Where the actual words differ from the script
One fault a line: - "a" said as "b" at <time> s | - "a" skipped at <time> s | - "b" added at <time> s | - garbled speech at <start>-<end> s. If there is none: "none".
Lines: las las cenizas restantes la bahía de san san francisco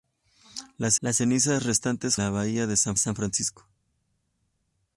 none